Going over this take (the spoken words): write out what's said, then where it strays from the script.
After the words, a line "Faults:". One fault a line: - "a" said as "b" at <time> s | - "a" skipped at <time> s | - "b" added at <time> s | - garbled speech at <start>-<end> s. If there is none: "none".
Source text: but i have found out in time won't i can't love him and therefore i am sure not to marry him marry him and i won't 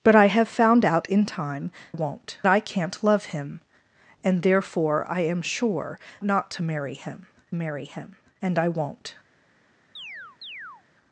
but i have found out in time won't i can't love him and therefore i am sure not to marry him marry him and i won't
Faults:
none